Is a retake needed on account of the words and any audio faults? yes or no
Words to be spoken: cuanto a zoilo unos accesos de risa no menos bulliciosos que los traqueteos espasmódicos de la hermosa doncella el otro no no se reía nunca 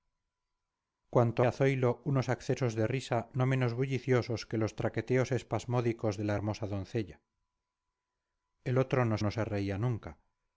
no